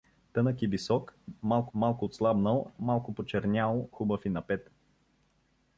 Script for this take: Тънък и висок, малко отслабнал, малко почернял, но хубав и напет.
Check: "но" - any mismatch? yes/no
yes